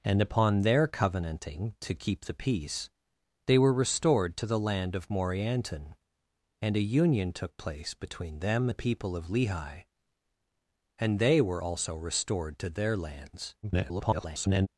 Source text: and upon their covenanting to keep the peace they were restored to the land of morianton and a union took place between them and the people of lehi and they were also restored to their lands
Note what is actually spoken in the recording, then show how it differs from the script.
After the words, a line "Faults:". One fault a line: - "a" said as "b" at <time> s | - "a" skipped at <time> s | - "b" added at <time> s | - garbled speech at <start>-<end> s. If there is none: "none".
and upon their covenanting to keep the peace they were restored to the land of morianton and a union took place between them the people of lehi and they were also restored to their lands [garbled]
Faults:
- "and" skipped at 8.7 s
- garbled speech at 13.6-14.7 s